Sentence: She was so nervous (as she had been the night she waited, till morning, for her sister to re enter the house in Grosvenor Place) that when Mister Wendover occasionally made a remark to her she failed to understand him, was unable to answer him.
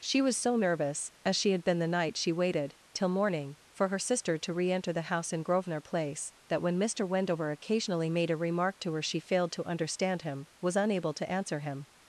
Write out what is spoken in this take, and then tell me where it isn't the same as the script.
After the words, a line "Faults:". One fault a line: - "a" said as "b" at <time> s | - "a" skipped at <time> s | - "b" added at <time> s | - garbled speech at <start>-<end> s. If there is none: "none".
She was so nervous (as she had been the night she waited, till morning, for her sister to re enter the house in Grosvenor Place) that when Mister Wendover occasionally made a remark to her she failed to understand him, was unable to answer him.
Faults:
none